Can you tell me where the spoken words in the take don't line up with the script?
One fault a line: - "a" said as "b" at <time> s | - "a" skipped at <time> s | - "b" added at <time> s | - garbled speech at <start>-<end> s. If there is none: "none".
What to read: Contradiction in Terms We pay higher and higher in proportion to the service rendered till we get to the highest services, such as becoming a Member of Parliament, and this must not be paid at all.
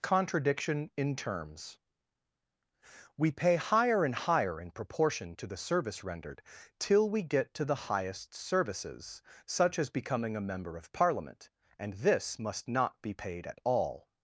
none